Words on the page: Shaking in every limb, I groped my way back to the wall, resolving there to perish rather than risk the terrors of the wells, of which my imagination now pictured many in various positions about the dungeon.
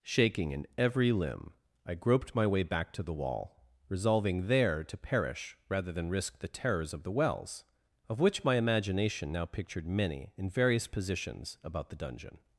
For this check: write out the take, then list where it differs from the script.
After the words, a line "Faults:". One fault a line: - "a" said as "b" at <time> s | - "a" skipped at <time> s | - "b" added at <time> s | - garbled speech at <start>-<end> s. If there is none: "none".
Shaking in every limb, I groped my way back to the wall, resolving there to perish rather than risk the terrors of the wells, of which my imagination now pictured many in various positions about the dungeon.
Faults:
none